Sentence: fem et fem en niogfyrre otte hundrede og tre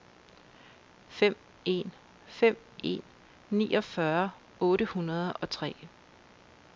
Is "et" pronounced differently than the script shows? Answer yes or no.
yes